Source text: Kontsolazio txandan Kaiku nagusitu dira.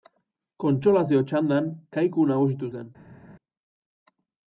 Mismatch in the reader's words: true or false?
true